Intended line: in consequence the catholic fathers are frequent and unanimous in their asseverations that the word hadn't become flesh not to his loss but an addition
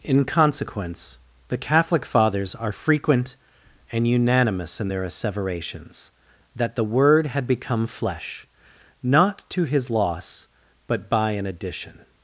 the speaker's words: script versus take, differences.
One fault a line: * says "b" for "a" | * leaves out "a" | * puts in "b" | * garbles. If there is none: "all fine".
* says "had" for "hadn't"
* puts in "by"